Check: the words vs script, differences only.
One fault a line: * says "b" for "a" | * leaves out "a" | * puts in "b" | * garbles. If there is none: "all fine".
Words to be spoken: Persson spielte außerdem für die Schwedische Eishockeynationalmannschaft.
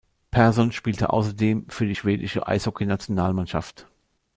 all fine